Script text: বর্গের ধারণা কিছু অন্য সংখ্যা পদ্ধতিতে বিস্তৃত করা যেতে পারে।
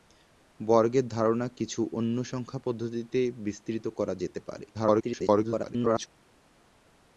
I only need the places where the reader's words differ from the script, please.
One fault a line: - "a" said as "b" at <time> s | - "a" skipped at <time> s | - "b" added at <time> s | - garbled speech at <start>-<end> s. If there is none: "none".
- garbled speech at 4.7-6.1 s